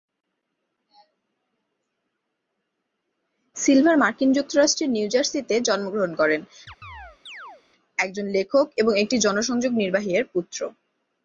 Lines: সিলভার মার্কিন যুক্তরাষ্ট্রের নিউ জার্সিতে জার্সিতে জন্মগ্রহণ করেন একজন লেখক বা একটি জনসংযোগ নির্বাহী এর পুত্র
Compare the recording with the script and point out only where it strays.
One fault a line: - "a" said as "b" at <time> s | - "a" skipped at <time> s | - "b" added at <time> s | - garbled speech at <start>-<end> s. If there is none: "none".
- "জার্সিতে" skipped at 5.5 s
- "বা" said as "এবং" at 8.8 s